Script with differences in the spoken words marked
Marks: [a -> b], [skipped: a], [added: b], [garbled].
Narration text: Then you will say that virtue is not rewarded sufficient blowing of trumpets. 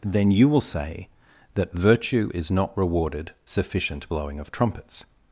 Then you will say that virtue is not rewarded sufficient blowing of trumpets.